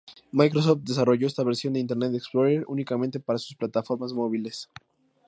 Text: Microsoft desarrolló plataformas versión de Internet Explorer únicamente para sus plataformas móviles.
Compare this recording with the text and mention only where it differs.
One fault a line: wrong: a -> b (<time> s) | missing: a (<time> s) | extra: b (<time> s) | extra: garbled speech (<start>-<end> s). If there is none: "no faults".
wrong: plataformas -> esta (1.3 s)